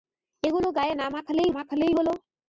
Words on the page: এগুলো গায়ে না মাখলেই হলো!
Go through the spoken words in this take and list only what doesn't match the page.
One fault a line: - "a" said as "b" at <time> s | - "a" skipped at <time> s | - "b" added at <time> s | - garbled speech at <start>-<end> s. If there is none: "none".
- "মাখলেই" added at 1.6 s